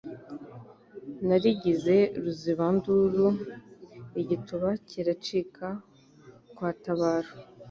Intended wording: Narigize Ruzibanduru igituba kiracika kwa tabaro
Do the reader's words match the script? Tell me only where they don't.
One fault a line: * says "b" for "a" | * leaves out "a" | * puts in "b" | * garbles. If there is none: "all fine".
all fine